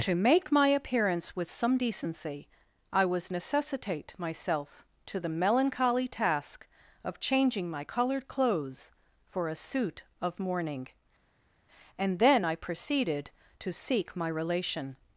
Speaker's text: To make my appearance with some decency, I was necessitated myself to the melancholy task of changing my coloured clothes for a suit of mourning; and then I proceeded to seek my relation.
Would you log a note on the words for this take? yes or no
yes